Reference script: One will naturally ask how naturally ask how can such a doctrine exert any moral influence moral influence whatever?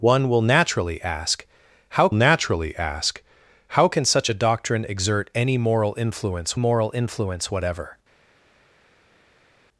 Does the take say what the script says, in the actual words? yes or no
yes